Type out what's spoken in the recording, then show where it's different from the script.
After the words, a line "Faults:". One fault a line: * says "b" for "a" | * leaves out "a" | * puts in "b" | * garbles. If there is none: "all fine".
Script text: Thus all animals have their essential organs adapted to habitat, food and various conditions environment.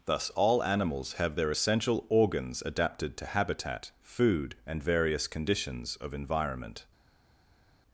Thus all animals have their essential organs adapted to habitat, food and various conditions of environment.
Faults:
* puts in "of"